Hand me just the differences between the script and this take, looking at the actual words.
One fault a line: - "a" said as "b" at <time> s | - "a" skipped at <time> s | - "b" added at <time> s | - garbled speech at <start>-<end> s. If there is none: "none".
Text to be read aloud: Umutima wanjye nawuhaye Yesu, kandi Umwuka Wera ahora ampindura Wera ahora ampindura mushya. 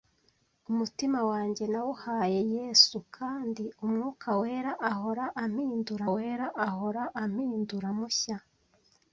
none